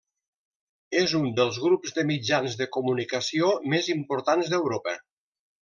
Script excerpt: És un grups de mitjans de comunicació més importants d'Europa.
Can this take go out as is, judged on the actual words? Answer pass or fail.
fail